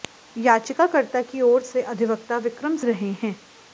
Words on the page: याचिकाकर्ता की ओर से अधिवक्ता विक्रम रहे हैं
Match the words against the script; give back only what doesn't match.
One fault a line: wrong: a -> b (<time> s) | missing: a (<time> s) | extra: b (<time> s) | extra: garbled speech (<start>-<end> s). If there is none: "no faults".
no faults